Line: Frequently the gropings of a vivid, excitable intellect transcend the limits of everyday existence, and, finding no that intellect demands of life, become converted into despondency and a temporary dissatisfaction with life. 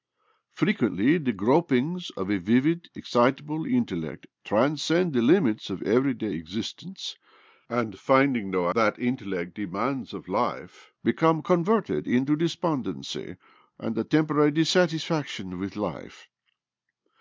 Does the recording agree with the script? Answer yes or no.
yes